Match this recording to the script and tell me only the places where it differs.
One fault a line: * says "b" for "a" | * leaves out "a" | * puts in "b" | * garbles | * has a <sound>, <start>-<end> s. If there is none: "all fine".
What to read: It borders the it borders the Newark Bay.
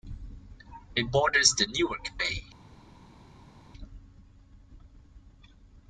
* leaves out "it borders the"